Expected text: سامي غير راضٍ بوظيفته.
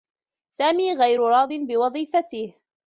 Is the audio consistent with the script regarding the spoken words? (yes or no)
yes